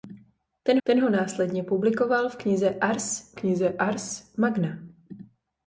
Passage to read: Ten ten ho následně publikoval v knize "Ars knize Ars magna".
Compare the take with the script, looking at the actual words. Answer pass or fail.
pass